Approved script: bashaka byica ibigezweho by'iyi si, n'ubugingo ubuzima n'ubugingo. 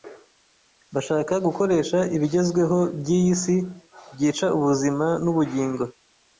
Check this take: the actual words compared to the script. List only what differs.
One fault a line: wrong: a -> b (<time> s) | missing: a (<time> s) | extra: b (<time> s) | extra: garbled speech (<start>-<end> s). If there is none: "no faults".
wrong: byica -> gukoresha (1.4 s)
wrong: n'ubugingo -> byica (4.1 s)